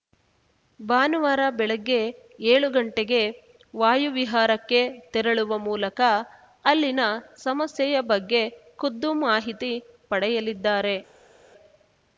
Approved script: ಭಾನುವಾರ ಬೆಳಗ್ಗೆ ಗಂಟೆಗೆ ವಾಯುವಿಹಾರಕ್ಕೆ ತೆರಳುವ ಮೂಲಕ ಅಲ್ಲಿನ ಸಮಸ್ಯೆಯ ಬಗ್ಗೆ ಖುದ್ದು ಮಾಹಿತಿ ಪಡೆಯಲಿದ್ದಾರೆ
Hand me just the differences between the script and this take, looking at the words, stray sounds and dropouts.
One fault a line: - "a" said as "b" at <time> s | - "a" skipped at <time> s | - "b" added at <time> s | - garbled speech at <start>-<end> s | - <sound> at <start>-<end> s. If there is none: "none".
- "ಏಳು" added at 2.5 s